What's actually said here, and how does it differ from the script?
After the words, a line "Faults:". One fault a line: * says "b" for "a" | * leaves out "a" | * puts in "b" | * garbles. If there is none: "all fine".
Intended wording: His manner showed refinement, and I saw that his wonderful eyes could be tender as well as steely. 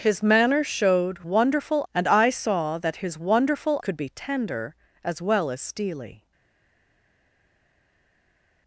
His manner showed wonderful, and I saw that his wonderful could be tender as well as steely.
Faults:
* says "wonderful" for "refinement"
* leaves out "eyes"